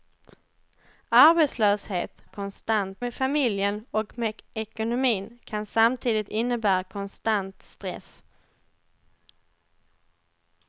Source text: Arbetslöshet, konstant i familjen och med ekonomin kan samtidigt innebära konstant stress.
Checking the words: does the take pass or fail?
pass